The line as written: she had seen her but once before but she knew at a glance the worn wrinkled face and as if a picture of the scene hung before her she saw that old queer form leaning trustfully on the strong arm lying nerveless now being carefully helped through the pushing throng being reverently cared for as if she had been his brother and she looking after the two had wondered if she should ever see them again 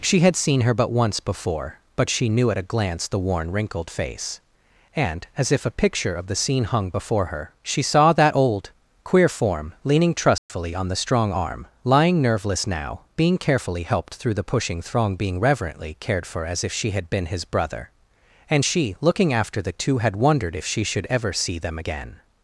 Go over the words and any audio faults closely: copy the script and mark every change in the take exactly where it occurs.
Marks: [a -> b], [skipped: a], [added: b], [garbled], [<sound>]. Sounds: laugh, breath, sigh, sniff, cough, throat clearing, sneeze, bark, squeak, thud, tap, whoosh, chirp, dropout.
she had seen her but once before but she knew at a glance the worn wrinkled face and as if a picture of the scene hung before her she saw that old queer form leaning trustfully [dropout] on the strong arm lying nerveless now being carefully helped through the pushing throng being reverently cared for as if she had been his brother and she looking after the two had wondered if she should ever see them again